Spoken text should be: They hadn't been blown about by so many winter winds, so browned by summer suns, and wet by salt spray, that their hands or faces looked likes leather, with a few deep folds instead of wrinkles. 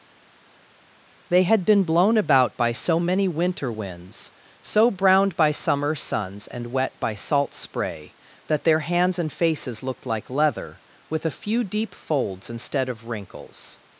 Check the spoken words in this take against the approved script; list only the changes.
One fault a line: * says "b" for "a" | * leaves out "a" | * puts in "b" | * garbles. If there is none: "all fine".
* says "had" for "hadn't"
* says "and" for "or"
* says "like" for "likes"